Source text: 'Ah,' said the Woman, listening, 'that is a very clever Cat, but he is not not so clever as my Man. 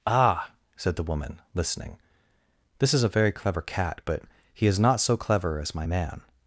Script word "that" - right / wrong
wrong